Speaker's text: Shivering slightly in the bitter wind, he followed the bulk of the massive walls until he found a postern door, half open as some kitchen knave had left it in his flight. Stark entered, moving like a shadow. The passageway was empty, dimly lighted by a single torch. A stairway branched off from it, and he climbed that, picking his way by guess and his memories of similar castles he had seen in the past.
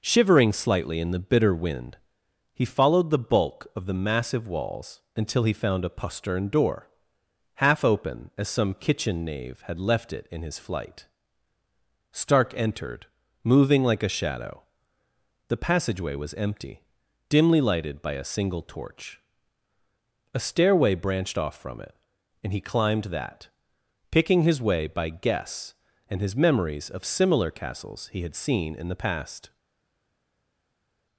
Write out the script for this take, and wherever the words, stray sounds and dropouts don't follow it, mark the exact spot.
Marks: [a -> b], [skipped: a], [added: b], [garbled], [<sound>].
Shivering slightly in the bitter wind, he followed the bulk of the massive walls until he found a postern door, half open as some kitchen knave had left it in his flight. Stark entered, moving like a shadow. The passageway was empty, dimly lighted by a single torch. A stairway branched off from it, and he climbed that, picking his way by guess and his memories of similar castles he had seen in the past.